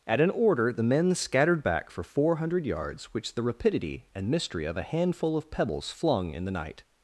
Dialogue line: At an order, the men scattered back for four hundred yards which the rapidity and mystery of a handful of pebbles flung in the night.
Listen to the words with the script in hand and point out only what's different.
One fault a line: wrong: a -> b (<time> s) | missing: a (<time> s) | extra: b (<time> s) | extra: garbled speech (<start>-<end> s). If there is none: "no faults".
no faults